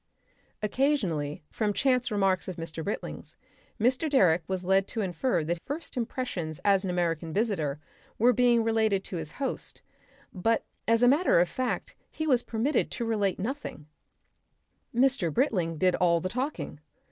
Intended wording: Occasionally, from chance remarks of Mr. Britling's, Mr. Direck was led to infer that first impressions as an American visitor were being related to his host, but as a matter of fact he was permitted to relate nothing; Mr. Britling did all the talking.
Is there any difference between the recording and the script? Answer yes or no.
no